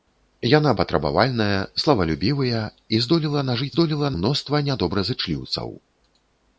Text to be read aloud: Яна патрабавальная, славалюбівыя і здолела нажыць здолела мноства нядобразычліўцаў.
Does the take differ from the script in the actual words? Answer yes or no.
no